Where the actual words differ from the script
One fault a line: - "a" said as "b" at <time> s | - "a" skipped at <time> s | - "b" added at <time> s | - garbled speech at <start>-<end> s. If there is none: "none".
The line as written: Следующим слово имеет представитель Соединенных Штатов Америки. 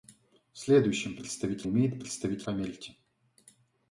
- "слово" said as "представитель" at 1.2 s
- "Соединенных Штатов" skipped at 2.5 s